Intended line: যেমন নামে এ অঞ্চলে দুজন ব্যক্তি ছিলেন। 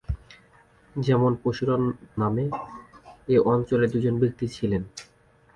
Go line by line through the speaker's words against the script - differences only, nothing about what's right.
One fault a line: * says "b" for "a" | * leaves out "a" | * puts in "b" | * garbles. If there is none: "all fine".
all fine